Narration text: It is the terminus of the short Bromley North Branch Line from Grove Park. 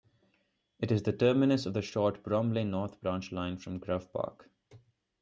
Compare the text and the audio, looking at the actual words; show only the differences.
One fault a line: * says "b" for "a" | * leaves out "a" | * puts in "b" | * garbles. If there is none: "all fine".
all fine